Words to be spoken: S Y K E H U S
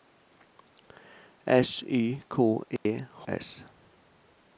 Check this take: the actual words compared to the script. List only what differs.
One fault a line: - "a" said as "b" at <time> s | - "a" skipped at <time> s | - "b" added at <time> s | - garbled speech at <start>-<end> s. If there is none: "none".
- "U" skipped at 3.3 s